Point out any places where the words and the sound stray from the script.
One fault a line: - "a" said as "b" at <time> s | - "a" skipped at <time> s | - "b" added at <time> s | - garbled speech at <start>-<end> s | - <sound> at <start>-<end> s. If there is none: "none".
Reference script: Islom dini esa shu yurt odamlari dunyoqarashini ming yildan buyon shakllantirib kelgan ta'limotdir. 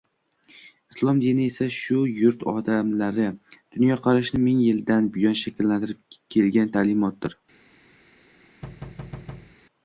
- thud at 8.6-9.6 s